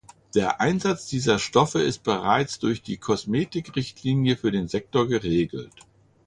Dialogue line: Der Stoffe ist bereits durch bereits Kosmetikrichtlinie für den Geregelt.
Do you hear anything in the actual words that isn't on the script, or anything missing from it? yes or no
yes